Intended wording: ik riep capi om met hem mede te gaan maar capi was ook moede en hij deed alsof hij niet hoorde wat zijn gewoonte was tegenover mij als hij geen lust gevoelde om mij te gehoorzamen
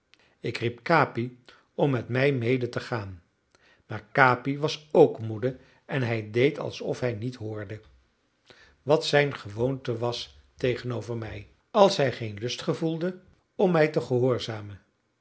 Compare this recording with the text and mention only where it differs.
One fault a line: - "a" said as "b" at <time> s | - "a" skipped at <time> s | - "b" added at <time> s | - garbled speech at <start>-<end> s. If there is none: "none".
- "hem" said as "mij" at 2.1 s